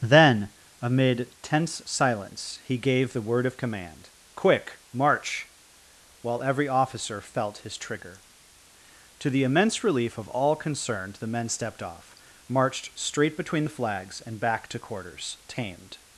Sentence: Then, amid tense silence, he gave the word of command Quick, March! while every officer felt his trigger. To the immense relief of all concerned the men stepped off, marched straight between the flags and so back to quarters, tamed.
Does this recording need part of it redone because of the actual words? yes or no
yes